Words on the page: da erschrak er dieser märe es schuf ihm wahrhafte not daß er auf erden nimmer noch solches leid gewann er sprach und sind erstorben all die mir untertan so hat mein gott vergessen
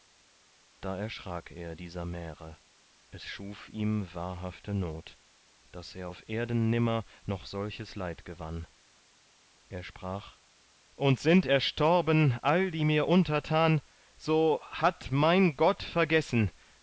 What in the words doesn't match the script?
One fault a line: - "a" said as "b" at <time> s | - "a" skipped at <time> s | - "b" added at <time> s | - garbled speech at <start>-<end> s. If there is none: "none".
none